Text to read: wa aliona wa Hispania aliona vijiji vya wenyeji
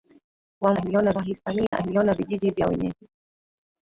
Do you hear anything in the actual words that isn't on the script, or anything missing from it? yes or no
no